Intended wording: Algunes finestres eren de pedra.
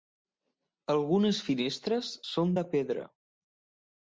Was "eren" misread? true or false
true